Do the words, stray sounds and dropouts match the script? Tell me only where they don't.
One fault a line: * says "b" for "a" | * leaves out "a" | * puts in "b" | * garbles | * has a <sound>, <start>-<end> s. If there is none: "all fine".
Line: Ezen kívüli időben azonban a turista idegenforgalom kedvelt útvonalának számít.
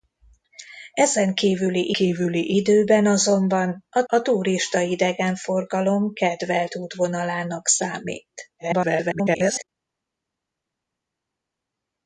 * puts in "kívüli"
* puts in "a"
* garbles